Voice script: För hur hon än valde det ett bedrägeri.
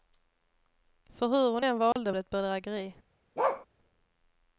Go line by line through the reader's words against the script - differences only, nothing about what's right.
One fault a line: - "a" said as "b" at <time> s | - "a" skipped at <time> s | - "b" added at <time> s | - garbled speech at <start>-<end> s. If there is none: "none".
none